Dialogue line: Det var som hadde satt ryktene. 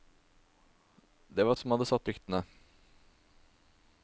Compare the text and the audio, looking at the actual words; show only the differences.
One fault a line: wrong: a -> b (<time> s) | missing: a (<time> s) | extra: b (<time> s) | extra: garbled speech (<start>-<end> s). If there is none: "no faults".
no faults